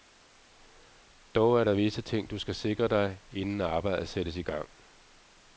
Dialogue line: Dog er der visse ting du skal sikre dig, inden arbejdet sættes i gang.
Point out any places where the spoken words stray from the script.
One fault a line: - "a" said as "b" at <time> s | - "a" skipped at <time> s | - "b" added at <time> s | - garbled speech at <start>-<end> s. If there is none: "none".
none